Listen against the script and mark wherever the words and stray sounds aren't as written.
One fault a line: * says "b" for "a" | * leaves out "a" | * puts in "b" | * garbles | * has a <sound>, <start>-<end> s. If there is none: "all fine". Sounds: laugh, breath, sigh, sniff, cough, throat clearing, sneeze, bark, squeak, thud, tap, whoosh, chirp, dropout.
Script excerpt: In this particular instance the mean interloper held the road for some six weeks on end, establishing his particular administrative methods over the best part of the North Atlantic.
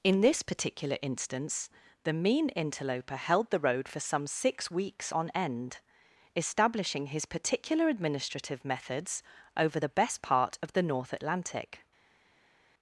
all fine